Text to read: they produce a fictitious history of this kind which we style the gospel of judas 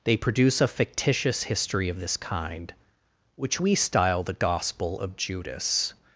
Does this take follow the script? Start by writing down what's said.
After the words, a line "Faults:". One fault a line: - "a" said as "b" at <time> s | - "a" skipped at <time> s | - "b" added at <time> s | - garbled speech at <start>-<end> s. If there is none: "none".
they produce a fictitious history of this kind which we style the gospel of judas
Faults:
none